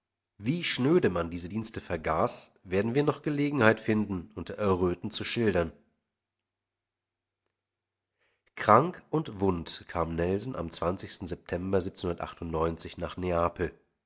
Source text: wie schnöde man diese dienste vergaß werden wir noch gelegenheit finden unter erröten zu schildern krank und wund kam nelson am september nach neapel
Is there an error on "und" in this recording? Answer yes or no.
no